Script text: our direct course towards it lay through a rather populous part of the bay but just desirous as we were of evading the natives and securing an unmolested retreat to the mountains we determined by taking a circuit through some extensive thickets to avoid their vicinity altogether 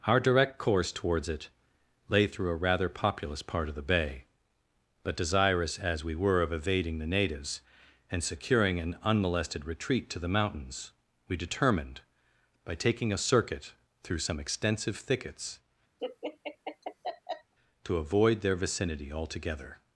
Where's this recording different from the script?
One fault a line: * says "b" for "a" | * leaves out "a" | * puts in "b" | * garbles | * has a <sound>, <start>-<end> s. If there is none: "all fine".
* leaves out "just"
* has a laugh, 16.0-17.5 s